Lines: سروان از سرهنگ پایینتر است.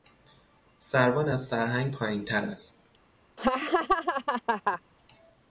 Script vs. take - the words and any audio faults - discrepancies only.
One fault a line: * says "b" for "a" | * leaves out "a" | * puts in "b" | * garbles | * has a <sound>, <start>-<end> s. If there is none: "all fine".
* has a laugh, 3.4-4.8 s